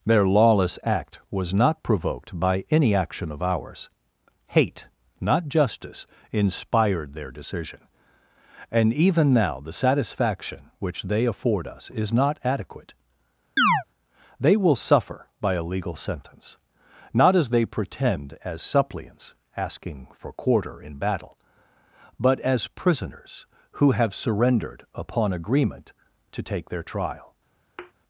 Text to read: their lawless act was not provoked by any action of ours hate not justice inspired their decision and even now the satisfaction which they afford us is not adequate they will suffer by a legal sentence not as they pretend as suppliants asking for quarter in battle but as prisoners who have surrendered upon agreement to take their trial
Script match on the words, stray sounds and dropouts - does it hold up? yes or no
no